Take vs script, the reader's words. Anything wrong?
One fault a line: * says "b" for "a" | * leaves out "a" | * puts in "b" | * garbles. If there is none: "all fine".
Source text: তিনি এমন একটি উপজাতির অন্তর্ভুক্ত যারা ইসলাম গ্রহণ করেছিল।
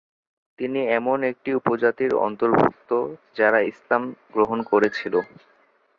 all fine